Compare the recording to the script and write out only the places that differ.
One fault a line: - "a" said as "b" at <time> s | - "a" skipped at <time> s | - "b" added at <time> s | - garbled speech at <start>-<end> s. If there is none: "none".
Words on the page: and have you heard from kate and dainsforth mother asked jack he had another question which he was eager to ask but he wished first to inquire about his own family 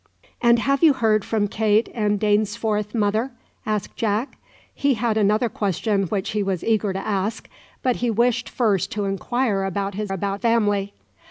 - "own" said as "about" at 10.1 s